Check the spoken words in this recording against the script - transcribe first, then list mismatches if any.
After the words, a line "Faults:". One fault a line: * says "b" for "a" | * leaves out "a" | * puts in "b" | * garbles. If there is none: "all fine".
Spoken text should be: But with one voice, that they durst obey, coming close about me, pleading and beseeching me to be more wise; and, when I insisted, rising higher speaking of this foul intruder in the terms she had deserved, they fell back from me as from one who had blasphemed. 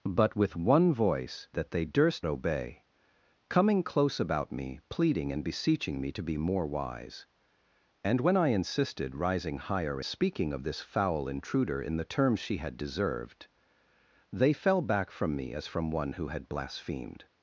But with one voice, that they durst obey, coming close about me, pleading and beseeching me to be more wise; and, when I insisted, rising higher speaking of this foul intruder in the terms she had deserved, they fell back from me as from one who had blasphemed.
Faults:
all fine